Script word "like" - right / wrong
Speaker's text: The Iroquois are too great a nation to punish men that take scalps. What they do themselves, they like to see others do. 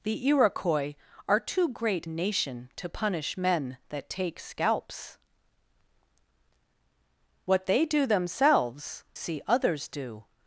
wrong